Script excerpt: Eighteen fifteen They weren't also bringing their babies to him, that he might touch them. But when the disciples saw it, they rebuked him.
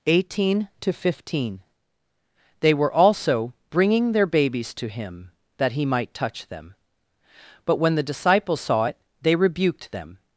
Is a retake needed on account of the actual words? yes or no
yes